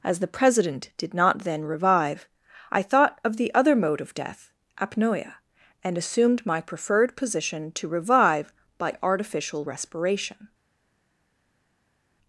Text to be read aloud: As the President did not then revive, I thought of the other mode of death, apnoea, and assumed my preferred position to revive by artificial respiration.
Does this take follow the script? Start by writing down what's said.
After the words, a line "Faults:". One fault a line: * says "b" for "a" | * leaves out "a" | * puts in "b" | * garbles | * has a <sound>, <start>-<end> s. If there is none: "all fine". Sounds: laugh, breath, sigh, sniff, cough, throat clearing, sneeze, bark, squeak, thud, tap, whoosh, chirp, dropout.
As the President did not then revive, I thought of the other mode of death, apnoea, and assumed my preferred position to revive by artificial respiration.
Faults:
all fine